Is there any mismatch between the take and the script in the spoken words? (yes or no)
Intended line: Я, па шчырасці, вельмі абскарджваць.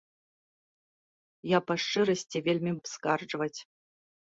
no